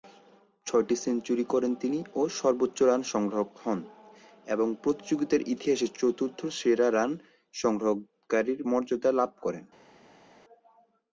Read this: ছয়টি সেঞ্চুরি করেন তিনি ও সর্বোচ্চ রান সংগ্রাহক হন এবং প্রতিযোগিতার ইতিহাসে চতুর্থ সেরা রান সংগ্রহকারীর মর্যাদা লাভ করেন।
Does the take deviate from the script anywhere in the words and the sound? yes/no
no